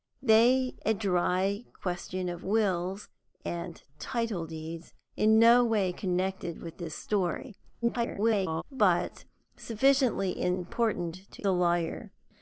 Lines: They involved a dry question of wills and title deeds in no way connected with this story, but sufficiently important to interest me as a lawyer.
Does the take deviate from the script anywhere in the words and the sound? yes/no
yes